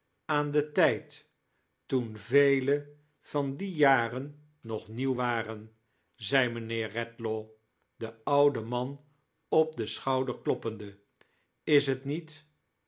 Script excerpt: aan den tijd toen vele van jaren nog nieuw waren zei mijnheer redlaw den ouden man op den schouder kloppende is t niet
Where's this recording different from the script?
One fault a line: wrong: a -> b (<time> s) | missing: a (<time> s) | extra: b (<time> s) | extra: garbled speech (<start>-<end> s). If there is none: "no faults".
extra: die (3.6 s)